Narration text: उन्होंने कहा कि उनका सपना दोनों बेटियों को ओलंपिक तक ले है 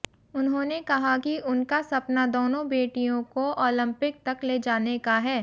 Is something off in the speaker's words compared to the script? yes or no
yes